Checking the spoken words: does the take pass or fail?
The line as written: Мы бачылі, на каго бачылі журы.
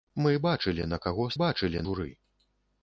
pass